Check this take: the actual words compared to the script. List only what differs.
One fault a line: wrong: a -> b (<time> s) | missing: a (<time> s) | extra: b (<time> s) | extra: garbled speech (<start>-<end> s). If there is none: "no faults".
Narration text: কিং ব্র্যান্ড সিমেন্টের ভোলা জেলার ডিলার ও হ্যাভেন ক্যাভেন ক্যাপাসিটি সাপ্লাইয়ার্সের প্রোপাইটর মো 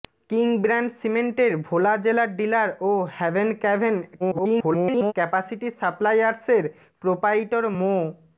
extra: garbled speech (4.2-5.1 s)